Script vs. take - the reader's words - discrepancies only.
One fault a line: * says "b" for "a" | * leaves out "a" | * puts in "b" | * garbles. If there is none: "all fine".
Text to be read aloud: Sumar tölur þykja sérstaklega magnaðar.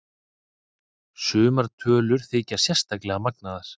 all fine